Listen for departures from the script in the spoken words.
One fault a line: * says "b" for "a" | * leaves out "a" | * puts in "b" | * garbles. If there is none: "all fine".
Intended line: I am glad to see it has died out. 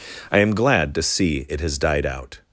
all fine